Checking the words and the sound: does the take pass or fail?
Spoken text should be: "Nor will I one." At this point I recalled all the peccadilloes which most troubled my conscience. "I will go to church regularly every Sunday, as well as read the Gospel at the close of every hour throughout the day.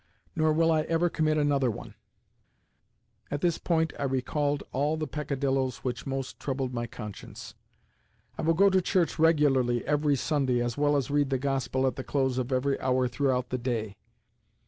fail